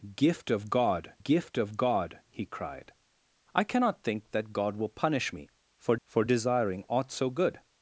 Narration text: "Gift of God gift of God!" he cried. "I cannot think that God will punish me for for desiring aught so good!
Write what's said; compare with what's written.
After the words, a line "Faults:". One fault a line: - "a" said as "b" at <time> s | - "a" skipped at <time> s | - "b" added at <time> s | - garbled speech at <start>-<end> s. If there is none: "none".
"Gift of God gift of God!" he cried. "I cannot think that God will punish me for for desiring aught so good!
Faults:
none